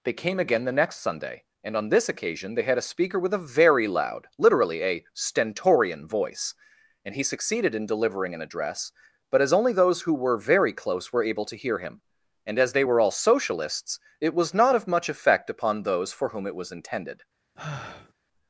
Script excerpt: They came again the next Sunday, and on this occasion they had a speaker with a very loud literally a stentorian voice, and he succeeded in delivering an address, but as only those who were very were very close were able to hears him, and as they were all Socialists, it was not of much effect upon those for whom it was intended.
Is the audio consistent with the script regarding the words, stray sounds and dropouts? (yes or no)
no